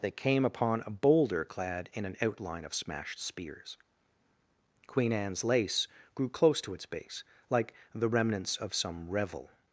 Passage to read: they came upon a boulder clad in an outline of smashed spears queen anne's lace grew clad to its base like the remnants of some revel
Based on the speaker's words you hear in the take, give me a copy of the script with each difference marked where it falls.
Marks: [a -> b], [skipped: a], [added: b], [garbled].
they came upon a boulder clad in an outline of smashed spears queen anne's lace grew [clad -> close] to its base like the remnants of some revel